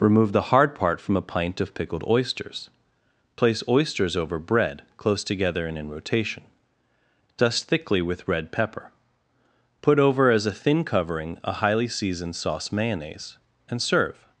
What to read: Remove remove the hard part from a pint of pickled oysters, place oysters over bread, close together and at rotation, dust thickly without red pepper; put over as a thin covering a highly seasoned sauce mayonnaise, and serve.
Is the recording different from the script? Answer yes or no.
yes